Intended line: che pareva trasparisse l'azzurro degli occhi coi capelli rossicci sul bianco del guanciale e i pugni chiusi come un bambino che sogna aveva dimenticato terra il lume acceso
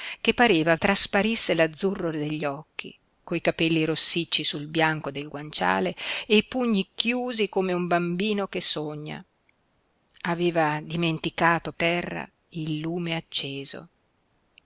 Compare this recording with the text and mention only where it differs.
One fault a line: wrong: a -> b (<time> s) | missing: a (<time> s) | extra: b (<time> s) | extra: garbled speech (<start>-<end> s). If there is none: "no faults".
no faults